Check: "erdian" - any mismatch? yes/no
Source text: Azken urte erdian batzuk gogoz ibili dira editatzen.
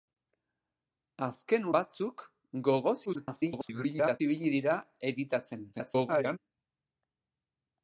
yes